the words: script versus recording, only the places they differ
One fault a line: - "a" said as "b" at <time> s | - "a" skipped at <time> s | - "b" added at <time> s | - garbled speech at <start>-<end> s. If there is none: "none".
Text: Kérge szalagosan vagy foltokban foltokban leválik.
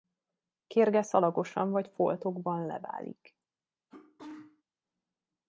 - "foltokban" skipped at 2.6 s